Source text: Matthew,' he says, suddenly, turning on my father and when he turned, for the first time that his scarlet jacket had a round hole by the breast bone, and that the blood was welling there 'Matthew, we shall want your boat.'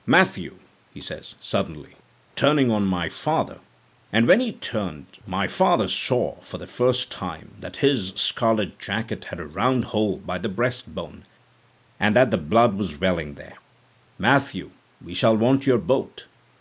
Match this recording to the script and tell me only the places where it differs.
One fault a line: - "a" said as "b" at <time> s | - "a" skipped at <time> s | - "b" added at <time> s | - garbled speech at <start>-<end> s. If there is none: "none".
- "my father saw" added at 5.3 s